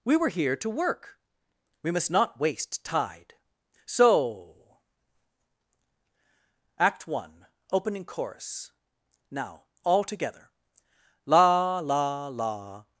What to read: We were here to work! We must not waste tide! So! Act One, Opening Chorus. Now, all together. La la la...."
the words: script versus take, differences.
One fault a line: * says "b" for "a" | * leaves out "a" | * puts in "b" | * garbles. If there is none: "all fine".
all fine